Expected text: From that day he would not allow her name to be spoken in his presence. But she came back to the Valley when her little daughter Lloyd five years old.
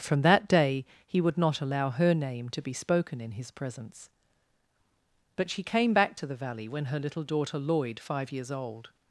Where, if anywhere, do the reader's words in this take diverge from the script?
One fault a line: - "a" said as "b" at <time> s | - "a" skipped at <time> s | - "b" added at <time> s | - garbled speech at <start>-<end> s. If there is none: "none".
none